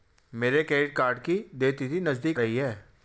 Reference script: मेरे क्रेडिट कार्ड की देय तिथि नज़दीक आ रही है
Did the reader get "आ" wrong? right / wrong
wrong